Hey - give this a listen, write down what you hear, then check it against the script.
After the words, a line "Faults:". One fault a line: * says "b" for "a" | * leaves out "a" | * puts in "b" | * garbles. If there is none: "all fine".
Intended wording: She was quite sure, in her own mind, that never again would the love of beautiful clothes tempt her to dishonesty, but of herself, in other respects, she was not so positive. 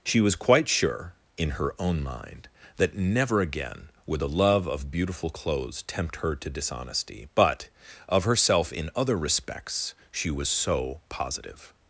She was quite sure, in her own mind, that never again would the love of beautiful clothes tempt her to dishonesty, but of herself, in other respects, she was so positive.
Faults:
* leaves out "not"